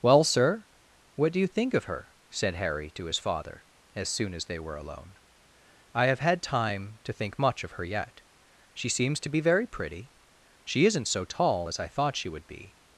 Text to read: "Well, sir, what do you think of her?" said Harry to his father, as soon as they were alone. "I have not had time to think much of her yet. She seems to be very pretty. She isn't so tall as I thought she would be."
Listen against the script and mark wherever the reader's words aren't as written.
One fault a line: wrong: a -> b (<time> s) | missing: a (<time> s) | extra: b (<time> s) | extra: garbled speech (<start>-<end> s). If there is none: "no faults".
missing: not (6.2 s)